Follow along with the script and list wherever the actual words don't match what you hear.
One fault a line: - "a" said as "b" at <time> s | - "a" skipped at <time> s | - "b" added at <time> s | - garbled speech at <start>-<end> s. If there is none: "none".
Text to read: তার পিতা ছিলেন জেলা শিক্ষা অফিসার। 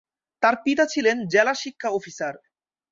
none